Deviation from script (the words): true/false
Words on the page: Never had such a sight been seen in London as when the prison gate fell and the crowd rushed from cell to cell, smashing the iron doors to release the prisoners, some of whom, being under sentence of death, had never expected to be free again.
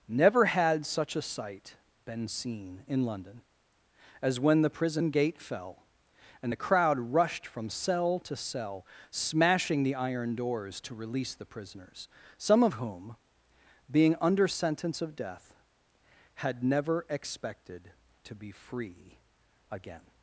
false